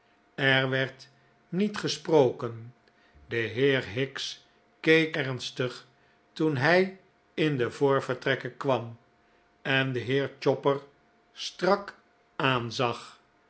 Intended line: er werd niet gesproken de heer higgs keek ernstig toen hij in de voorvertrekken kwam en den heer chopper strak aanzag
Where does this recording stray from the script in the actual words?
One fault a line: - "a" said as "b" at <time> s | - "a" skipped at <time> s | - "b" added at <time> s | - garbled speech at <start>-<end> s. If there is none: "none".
none